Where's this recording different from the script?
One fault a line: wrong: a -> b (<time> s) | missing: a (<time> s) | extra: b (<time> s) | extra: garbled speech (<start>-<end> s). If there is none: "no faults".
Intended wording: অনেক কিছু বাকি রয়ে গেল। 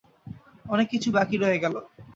no faults